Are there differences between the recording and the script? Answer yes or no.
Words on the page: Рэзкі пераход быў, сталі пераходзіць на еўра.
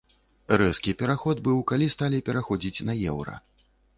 yes